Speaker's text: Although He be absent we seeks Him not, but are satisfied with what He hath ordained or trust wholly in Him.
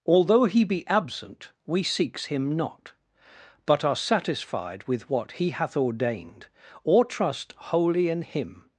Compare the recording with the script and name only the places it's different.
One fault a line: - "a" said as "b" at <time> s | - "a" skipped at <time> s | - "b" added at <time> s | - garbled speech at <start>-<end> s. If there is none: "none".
none